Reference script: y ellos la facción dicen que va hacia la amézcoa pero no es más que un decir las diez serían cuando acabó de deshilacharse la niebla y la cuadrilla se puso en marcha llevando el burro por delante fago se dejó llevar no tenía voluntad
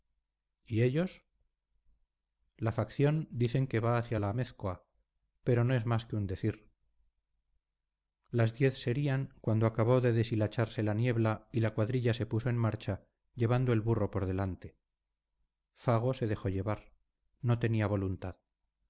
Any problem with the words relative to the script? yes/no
no